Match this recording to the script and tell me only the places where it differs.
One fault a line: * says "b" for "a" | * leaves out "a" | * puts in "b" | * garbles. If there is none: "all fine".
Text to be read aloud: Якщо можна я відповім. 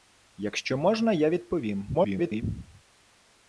* garbles